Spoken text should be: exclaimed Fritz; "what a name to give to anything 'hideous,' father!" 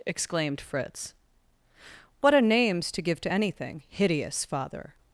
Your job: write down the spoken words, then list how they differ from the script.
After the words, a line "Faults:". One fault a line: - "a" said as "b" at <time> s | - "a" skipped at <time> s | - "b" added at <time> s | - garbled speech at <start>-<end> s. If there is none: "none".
exclaimed Fritz; "what a names to give to anything 'hideous,' father!"
Faults:
- "name" said as "names" at 2.4 s